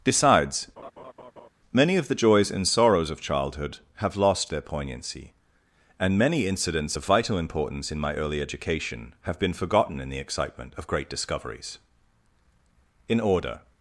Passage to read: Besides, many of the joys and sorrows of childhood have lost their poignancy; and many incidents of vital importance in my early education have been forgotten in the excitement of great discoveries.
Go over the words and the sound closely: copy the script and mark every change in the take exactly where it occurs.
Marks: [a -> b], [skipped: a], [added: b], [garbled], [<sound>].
Besides, [laugh] many of the joys and sorrows of childhood have lost their poignancy; and many incidents of vital importance in my early education have been forgotten in the excitement of great discoveries. [added: In order]